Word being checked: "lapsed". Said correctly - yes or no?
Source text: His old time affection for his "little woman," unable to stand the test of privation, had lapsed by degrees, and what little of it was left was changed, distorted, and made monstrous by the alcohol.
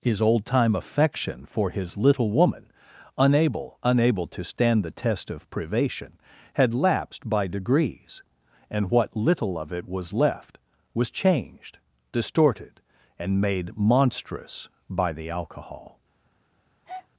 yes